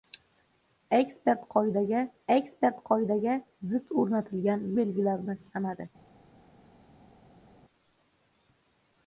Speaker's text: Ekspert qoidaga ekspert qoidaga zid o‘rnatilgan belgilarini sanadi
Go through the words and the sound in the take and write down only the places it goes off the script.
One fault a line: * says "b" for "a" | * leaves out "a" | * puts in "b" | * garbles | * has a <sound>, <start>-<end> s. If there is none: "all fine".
all fine